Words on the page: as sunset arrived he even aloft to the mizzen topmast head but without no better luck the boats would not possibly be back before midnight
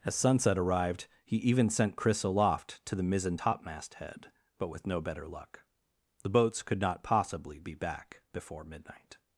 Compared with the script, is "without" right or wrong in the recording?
wrong